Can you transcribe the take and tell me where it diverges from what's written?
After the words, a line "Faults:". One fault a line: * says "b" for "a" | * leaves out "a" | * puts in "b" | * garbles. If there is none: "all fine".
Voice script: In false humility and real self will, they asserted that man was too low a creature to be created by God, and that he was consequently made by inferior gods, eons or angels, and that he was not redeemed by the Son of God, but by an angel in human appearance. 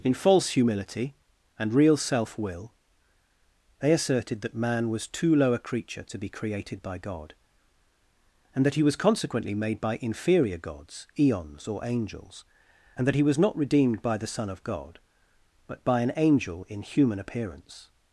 In false humility and real self will, they asserted that man was too low a creature to be created by God, and that he was consequently made by inferior gods, eons or angels, and that he was not redeemed by the Son of God, but by an angel in human appearance.
Faults:
all fine